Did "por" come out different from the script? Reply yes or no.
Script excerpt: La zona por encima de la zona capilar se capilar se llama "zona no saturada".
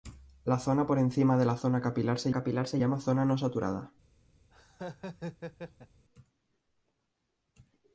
no